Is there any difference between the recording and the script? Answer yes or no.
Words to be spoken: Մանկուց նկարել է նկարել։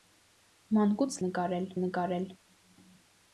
no